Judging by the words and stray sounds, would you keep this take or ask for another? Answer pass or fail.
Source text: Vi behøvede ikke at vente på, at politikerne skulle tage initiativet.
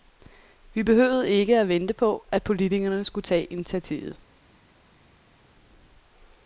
pass